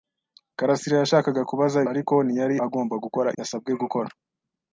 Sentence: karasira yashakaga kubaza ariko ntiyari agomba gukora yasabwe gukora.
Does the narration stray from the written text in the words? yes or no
no